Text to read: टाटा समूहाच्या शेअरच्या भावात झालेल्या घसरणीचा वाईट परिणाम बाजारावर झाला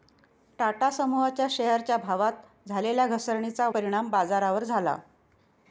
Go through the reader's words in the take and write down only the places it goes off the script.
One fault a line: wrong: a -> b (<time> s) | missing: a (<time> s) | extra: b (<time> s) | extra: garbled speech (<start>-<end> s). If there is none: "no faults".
missing: वाईट (3.7 s)